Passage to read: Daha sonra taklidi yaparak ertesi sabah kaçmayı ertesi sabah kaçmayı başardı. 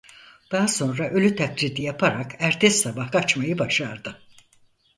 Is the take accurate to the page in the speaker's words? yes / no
no